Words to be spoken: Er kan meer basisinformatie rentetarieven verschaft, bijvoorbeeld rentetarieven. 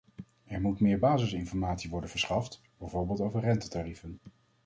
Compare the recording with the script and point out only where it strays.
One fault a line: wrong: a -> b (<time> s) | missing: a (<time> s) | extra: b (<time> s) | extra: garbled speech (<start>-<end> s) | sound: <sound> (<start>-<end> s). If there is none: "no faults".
wrong: kan -> moet (0.6 s)
wrong: rentetarieven -> worden (1.9 s)
extra: over (3.2 s)